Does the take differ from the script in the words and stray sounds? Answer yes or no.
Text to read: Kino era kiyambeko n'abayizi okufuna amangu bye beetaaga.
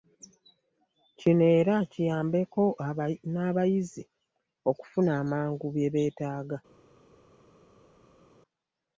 no